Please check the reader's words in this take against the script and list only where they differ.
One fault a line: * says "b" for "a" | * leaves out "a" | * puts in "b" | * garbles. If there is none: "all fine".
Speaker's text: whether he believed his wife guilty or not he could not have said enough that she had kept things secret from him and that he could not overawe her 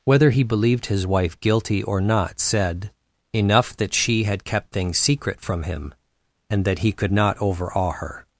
* leaves out "he could not have"